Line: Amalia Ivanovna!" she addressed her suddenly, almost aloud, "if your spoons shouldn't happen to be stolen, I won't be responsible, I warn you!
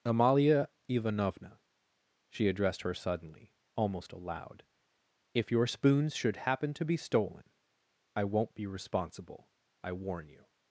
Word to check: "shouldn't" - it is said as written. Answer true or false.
false